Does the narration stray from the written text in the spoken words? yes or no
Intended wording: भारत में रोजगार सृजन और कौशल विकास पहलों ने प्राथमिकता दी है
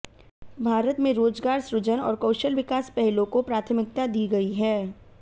yes